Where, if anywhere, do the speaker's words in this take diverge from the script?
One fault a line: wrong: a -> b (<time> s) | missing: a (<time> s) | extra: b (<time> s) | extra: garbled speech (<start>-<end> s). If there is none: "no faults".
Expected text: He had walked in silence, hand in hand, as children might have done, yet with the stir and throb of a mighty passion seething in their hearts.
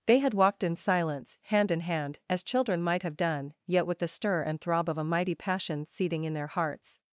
wrong: He -> They (0.1 s)